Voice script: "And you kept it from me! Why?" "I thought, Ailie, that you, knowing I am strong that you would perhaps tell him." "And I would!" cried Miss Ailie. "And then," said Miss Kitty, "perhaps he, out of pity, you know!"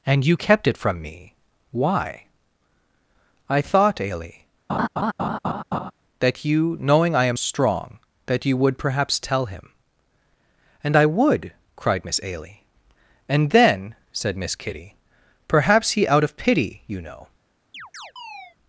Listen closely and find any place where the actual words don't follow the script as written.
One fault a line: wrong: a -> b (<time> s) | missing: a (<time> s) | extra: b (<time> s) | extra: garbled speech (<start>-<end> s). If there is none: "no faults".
no faults